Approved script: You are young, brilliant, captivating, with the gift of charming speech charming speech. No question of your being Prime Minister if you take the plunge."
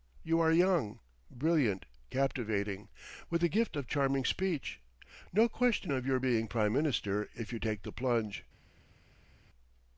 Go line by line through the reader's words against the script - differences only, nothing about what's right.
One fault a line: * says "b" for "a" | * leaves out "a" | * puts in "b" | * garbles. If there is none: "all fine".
* leaves out "charming speech"